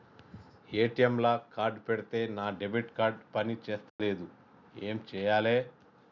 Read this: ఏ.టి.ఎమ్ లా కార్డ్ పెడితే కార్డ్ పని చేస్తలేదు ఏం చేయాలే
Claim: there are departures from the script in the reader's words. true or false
true